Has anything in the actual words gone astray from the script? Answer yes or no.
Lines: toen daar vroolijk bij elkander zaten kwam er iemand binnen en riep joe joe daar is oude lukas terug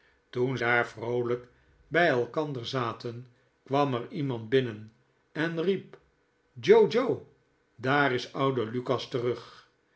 no